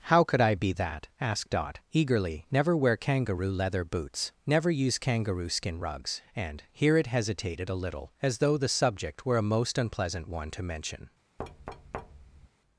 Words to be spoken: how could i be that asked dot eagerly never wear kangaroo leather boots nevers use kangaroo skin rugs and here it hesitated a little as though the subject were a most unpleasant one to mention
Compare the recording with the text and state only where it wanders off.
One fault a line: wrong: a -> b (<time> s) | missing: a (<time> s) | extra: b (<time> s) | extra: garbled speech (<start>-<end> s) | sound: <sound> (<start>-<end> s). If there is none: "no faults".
wrong: nevers -> never (4.5 s)
sound: thud (11.4-12.5 s)